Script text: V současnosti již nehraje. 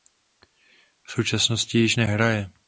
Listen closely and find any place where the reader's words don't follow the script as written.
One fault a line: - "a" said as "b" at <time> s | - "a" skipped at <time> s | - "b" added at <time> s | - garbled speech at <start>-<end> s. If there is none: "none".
none